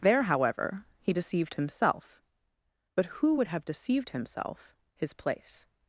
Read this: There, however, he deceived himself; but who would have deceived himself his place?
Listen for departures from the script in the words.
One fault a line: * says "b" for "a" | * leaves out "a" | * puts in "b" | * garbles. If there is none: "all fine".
all fine